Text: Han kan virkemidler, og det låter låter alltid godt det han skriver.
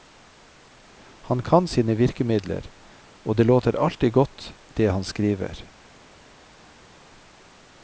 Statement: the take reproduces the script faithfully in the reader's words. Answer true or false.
false